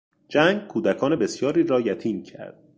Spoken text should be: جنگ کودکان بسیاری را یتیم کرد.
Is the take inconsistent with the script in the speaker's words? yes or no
no